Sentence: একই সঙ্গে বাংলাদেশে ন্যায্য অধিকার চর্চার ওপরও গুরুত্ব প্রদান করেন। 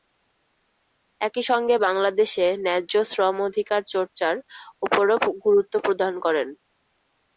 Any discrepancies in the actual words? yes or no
yes